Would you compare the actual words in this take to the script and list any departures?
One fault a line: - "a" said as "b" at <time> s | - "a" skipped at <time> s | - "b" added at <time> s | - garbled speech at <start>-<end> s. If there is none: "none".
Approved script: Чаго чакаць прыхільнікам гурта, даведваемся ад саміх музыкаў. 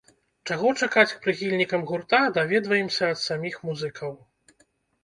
none